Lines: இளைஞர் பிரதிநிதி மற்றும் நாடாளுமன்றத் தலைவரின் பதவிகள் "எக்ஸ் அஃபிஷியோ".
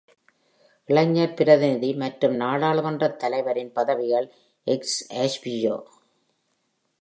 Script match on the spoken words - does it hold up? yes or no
yes